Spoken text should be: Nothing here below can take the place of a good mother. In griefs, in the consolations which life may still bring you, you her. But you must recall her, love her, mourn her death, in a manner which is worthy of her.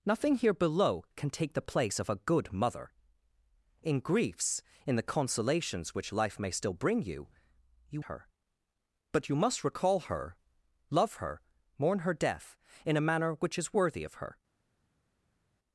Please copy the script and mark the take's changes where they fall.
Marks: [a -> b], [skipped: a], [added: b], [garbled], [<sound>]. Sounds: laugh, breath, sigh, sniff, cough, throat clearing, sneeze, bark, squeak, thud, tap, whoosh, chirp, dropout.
Nothing here below can take the place of a good mother. In griefs, in the consolations which life may still bring you, you her. But you must recall her, love her, mourn her death, in a manner which is worthy of her.